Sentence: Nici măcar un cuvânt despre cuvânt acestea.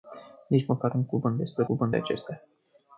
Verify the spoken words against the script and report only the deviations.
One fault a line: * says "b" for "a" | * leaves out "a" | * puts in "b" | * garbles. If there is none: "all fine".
all fine